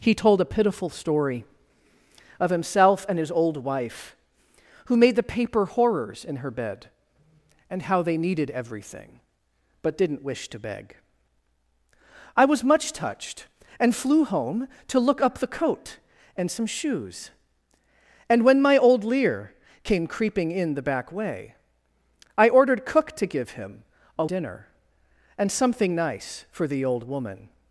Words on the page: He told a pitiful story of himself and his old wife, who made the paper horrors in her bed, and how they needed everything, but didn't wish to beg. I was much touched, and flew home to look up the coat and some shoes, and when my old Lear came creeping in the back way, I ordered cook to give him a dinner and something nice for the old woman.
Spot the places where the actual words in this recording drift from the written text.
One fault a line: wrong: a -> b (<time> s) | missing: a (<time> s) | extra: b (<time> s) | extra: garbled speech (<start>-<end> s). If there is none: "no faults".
no faults